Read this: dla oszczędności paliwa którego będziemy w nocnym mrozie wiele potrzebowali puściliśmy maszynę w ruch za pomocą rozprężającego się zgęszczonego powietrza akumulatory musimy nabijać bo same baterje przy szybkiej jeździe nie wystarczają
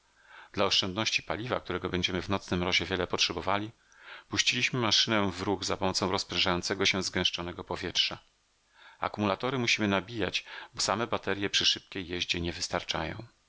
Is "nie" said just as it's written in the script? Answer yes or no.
yes